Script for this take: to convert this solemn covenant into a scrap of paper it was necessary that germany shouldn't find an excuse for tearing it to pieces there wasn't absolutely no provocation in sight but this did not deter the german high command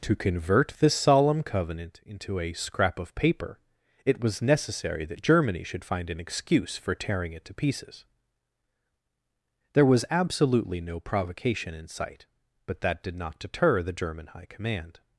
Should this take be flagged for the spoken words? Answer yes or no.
yes